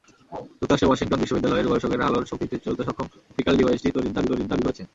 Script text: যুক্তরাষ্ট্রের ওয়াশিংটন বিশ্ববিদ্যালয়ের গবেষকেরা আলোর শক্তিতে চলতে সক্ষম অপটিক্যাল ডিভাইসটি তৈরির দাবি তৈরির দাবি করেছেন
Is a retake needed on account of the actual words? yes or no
no